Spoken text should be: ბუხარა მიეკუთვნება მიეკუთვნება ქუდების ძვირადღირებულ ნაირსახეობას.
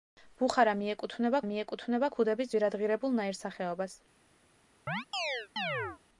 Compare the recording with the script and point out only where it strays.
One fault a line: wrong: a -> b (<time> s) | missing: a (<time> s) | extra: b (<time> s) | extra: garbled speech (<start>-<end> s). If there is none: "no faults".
no faults